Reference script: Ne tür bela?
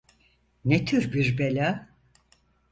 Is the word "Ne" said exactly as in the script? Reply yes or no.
yes